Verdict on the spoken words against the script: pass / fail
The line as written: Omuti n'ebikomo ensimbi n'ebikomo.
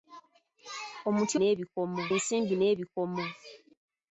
pass